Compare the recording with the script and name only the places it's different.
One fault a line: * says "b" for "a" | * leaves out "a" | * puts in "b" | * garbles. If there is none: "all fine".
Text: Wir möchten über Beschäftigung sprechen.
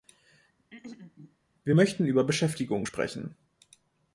all fine